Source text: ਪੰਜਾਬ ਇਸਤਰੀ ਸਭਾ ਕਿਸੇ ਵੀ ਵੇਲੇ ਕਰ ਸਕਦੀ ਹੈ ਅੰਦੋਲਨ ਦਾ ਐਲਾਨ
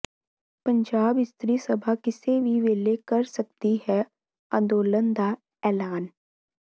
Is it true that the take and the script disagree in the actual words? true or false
false